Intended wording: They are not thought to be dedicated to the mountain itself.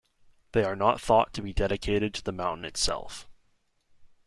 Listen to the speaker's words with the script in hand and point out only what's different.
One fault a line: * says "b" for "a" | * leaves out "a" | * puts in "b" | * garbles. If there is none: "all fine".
all fine